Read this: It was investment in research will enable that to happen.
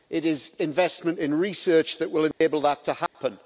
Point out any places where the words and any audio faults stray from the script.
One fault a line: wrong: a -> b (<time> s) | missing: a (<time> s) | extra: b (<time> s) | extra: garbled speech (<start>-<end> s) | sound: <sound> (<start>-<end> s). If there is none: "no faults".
wrong: was -> is (0.2 s)
extra: that (2.0 s)
sound: dropout (2.3-2.4 s)
sound: dropout (3.1-3.1 s)